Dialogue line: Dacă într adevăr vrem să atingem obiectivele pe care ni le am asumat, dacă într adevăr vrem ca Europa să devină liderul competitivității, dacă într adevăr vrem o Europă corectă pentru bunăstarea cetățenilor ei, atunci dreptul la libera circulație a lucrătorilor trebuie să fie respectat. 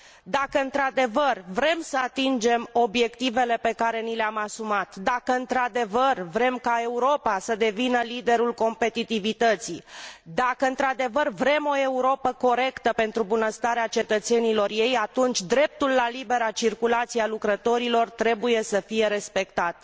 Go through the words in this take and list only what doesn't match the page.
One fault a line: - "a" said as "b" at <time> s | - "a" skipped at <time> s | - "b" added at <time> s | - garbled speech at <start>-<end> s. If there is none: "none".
none